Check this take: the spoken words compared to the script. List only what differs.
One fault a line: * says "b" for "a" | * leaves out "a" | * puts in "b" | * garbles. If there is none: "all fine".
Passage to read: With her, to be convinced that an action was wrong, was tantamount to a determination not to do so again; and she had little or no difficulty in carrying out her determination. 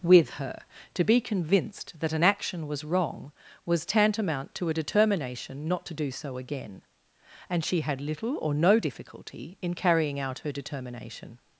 all fine